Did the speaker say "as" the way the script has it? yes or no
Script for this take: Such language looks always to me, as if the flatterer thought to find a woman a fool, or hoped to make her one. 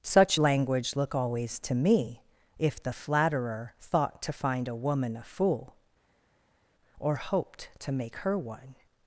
no